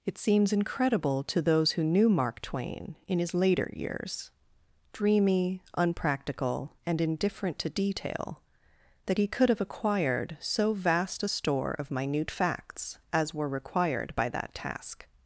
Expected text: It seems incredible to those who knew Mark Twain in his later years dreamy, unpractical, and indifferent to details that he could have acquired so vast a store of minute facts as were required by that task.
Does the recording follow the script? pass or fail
fail